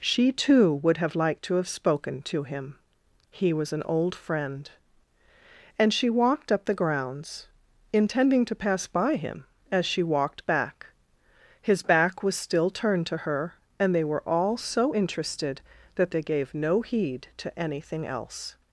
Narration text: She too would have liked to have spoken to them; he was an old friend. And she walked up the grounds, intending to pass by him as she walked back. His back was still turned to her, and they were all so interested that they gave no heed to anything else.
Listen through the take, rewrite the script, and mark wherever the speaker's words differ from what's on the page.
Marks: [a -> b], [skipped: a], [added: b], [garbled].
She too would have liked to have spoken to [them; -> him] he was an old friend. And she walked up the grounds, intending to pass by him as she walked back. His back was still turned to her, and they were all so interested that they gave no heed to anything else.